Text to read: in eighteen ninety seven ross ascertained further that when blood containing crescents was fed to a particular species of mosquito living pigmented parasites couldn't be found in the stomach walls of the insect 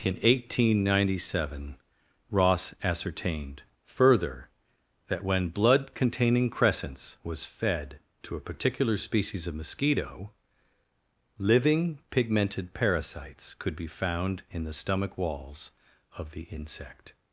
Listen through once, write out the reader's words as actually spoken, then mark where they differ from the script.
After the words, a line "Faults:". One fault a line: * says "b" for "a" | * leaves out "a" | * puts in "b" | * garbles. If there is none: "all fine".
in eighteen ninety seven ross ascertained further that when blood containing crescents was fed to a particular species of mosquito living pigmented parasites could be found in the stomach walls of the insect
Faults:
* says "could" for "couldn't"